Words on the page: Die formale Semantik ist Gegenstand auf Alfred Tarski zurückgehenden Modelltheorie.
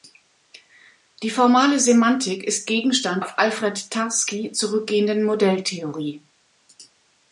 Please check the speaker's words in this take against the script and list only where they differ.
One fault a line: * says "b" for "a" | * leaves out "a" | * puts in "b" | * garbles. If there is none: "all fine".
all fine